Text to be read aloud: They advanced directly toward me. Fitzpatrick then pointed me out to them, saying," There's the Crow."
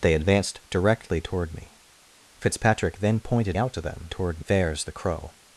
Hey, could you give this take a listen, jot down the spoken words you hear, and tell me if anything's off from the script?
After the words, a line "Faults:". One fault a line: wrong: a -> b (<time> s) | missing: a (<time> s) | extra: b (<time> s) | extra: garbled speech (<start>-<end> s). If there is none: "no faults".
They advanced directly toward me. Fitzpatrick then pointed out to them, toward," There's the Crow."
Faults:
missing: me (3.6 s)
wrong: saying -> toward (4.1 s)